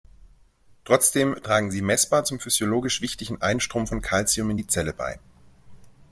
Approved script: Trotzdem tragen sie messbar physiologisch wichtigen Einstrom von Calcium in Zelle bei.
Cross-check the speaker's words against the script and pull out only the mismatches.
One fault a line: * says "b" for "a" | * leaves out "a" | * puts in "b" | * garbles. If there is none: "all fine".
* puts in "zum"
* puts in "die"